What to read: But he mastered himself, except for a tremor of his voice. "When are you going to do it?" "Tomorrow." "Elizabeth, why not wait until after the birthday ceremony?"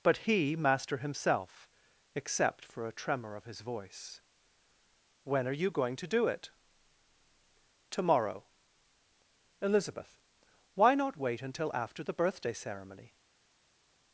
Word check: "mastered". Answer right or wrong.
wrong